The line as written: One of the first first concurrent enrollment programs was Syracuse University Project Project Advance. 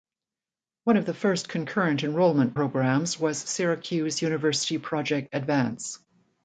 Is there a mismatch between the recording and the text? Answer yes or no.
yes